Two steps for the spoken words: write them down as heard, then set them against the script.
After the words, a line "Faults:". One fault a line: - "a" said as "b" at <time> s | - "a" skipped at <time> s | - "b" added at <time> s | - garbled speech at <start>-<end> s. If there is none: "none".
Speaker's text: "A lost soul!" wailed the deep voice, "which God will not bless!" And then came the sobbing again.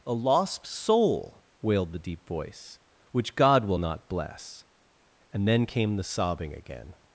"A lost soul!" wailed the deep voice, "which God will not bless!" And then came the sobbing again.
Faults:
none